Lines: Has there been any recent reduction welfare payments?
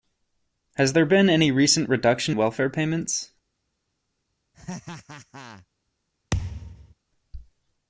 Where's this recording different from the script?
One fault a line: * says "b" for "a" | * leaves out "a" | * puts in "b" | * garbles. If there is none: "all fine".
all fine